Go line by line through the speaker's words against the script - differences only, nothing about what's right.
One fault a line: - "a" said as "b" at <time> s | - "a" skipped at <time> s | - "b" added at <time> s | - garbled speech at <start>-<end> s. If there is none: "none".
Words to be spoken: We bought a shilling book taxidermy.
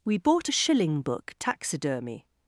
none